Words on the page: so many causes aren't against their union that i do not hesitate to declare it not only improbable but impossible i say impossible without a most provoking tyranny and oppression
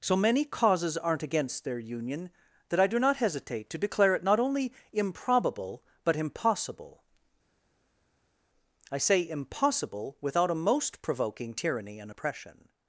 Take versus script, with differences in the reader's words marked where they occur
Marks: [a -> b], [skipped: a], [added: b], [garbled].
so many causes aren't against their union that i do not hesitate to declare it not only improbable but impossible i say impossible without a most provoking tyranny and oppression